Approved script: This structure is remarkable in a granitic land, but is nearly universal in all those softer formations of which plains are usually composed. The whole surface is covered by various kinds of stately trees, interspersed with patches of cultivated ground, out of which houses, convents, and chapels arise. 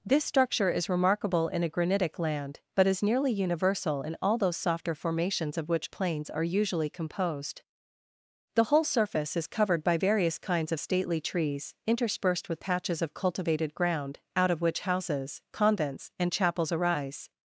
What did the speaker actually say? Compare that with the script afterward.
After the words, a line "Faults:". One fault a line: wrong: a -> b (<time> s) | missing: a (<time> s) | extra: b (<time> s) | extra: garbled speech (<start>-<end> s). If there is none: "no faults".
This structure is remarkable in a granitic land, but is nearly universal in all those softer formations of which plains are usually composed. The whole surface is covered by various kinds of stately trees, interspersed with patches of cultivated ground, out of which houses, convents, and chapels arise.
Faults:
no faults